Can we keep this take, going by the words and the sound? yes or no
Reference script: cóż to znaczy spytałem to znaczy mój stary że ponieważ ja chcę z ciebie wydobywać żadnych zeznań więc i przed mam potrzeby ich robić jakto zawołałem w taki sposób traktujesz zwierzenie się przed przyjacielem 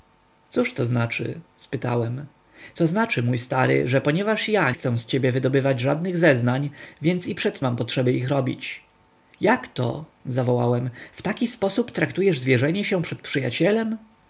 yes